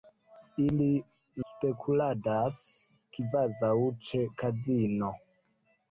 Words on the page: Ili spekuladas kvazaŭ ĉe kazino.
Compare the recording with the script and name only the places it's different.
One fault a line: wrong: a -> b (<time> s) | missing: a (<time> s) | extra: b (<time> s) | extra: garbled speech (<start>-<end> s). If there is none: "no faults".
no faults